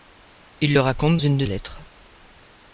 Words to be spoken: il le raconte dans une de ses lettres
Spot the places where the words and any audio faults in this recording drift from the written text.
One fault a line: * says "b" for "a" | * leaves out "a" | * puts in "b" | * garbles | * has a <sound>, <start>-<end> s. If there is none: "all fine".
* leaves out "dans"
* leaves out "ses"